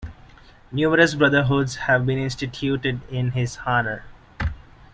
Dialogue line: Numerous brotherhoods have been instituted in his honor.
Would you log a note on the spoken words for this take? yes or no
no